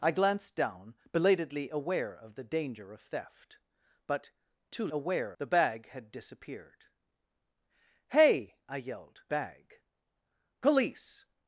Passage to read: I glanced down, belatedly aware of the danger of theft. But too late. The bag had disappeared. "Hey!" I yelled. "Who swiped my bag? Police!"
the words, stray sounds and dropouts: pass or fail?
fail